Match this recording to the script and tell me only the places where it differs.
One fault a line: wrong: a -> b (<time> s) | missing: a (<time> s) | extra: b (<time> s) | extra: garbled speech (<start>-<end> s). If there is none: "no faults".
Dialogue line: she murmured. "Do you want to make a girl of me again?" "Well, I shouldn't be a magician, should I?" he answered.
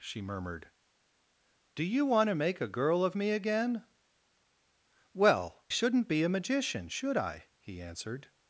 missing: I (5.6 s)